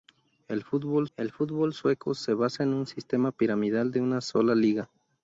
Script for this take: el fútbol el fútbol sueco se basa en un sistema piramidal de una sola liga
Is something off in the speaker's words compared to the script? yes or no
no